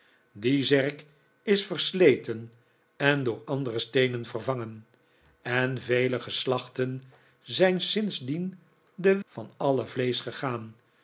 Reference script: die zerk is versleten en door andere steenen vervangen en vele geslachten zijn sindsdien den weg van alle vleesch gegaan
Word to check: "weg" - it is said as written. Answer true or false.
false